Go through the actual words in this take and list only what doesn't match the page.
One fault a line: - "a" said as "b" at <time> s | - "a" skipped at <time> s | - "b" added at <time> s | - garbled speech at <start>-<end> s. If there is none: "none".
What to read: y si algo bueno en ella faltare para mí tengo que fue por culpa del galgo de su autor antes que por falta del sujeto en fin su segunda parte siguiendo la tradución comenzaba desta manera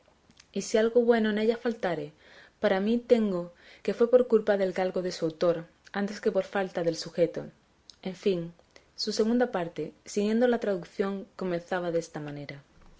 none